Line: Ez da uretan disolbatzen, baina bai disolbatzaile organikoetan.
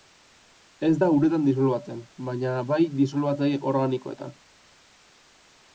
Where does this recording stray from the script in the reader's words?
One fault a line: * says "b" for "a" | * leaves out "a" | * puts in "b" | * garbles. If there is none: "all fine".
all fine